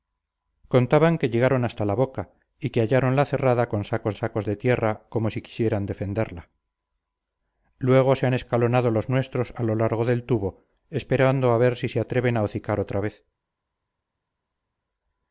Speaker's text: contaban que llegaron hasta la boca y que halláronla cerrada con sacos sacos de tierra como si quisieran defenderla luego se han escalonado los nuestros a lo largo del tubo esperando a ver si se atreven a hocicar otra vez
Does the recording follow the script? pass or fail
pass